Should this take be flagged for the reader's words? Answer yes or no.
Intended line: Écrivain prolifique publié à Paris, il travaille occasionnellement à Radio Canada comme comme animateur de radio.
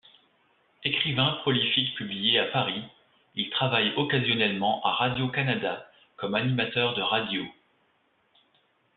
yes